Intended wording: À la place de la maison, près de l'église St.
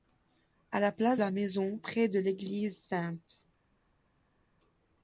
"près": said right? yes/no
yes